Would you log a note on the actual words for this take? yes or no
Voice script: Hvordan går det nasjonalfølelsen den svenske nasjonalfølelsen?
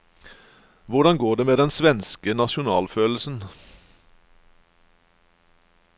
yes